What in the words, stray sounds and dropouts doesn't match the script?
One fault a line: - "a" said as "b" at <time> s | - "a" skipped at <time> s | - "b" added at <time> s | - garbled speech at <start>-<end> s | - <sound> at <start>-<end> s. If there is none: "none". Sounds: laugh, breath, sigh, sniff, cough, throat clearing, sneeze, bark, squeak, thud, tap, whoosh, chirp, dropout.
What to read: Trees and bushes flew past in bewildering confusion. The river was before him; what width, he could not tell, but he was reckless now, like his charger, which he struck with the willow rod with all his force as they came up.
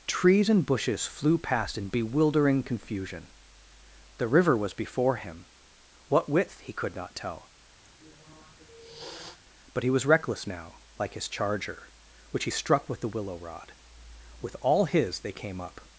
- sniff at 7.8-9.4 s
- "force as" skipped at 15.2 s